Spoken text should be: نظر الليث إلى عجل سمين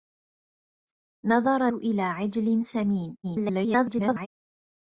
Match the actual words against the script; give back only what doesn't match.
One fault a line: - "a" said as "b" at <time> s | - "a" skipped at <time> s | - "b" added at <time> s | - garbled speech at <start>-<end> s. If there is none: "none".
- "الليث" skipped at 1.7 s
- garbled speech at 3.2-4.3 s